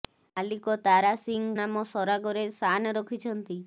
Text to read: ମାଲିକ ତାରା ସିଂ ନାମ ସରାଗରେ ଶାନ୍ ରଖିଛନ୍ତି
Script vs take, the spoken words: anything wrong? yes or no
no